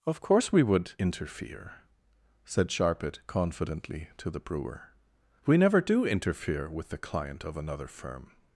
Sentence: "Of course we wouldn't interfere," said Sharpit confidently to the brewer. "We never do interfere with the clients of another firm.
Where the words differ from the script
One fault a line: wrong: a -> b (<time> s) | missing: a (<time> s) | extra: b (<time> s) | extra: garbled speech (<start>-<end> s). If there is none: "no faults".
wrong: wouldn't -> would (0.6 s)
wrong: clients -> client (7.0 s)